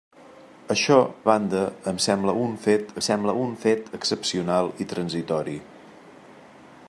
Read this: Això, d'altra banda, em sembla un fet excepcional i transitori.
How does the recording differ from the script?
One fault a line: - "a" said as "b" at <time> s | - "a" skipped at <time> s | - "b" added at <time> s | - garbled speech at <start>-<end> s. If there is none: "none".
- "d'altra" skipped at 0.9 s
- "sembla un fet" added at 3.1 s